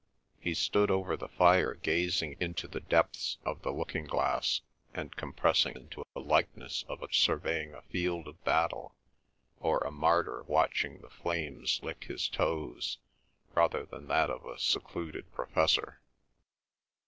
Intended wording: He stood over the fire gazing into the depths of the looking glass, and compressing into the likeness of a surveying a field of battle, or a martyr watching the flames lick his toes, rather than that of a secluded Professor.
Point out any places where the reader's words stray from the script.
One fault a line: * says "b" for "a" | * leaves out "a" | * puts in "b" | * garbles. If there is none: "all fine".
all fine